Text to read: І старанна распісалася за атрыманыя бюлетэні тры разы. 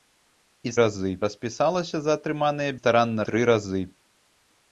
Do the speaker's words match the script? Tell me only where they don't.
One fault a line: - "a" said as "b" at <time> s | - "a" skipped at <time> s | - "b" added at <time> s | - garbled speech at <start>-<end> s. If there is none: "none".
- "старанна" said as "разы" at 0.8 s
- "бюлетэні" said as "старанна" at 2.8 s